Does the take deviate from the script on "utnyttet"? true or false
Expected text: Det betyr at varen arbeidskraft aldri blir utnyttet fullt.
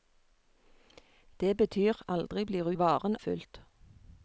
true